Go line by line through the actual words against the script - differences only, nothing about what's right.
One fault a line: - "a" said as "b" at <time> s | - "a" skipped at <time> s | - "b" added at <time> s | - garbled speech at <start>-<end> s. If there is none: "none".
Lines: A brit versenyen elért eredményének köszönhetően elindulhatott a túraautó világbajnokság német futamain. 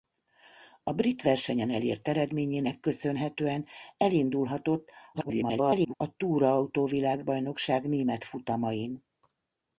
- garbled speech at 5.1-5.9 s